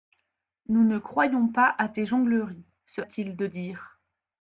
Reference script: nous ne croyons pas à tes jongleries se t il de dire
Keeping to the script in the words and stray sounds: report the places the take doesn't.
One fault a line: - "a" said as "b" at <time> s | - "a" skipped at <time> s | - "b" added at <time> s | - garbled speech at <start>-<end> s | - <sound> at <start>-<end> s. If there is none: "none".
none